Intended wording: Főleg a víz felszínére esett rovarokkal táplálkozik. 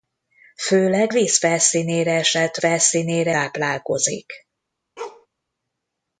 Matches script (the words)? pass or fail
fail